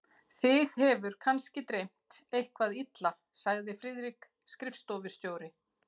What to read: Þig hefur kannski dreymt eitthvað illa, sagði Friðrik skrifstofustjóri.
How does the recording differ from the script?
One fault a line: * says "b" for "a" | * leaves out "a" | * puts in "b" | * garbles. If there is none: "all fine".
all fine